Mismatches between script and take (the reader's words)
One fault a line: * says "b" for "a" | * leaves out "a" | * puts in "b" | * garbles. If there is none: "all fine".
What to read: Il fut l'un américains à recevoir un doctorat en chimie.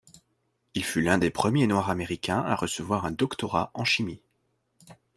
* puts in "des premiers noirs"